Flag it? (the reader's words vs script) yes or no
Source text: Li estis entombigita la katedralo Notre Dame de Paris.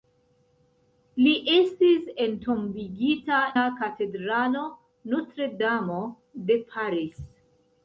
no